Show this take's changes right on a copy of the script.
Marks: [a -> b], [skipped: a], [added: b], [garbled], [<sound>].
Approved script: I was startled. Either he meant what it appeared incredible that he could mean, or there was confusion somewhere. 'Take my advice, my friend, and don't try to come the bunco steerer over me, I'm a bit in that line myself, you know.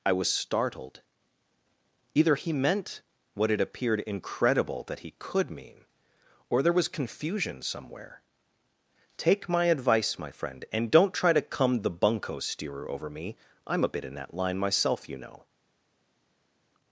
I was startled. Either he meant what it appeared incredible that he could mean, or there was confusion somewhere. 'Take my advice, my friend, and don't try to come the bunco steerer over me, I'm a bit in that line myself, you know.